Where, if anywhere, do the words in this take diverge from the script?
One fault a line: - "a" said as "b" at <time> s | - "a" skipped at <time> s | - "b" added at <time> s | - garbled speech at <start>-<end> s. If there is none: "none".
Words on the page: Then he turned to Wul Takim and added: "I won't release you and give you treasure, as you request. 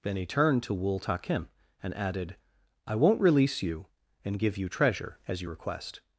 none